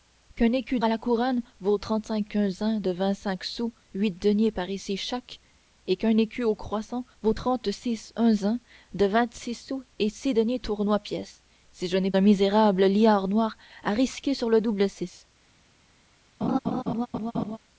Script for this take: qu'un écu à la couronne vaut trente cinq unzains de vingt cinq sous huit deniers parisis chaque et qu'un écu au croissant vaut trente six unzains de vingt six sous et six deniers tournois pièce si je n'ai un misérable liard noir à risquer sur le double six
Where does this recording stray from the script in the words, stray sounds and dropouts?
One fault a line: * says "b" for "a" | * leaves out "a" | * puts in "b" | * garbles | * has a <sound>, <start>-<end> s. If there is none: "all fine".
* has a laugh, 16.4-17.6 s